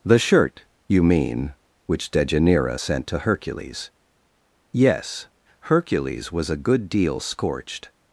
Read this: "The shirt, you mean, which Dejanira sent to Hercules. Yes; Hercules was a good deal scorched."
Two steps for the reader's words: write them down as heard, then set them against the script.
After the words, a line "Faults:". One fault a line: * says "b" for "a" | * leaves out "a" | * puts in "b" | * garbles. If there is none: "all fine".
"The shirt, you mean, which Dejanira sent to Hercules. Yes; Hercules was a good deal scorched."
Faults:
all fine